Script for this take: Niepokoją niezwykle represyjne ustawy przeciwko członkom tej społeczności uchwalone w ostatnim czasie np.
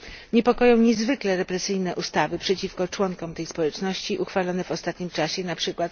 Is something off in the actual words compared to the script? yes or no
no